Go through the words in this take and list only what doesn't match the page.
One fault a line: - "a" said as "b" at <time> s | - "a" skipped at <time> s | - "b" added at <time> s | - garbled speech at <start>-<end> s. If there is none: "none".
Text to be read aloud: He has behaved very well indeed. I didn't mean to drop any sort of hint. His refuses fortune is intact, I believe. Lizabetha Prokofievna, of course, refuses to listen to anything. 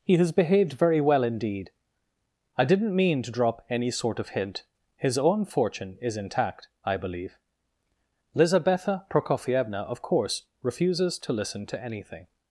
- "refuses" said as "own" at 5.2 s